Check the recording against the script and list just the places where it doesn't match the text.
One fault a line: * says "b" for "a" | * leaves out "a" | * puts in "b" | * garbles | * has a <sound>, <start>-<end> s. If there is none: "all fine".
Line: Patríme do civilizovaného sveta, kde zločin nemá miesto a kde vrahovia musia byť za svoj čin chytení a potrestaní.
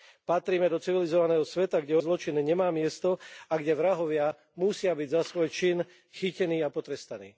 all fine